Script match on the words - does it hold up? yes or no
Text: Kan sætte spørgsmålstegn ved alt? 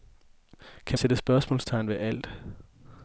yes